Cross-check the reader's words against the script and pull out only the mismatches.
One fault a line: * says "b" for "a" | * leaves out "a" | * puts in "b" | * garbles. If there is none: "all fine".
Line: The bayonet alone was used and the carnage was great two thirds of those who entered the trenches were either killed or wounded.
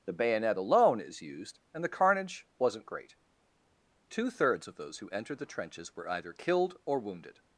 * says "is" for "was"
* says "wasn't" for "was"